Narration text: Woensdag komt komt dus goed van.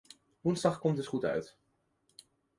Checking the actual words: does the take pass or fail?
fail